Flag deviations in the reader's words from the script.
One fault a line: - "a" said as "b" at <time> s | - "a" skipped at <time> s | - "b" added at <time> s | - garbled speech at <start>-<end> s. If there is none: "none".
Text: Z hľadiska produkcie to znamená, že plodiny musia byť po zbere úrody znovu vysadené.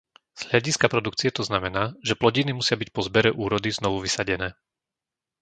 none